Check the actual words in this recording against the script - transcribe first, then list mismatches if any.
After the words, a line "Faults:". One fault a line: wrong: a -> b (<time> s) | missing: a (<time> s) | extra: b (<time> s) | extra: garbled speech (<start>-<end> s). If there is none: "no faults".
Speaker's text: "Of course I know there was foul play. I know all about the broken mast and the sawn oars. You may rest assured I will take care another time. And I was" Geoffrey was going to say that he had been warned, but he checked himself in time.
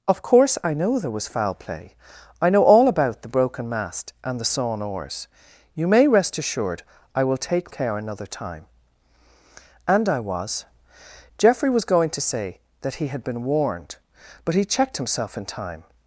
"Of course I know there was foul play. I know all about the broken mast and the sawn oars. You may rest assured I will take care another time. And I was" Geoffrey was going to say that he had been warned, but he checked himself in time.
Faults:
no faults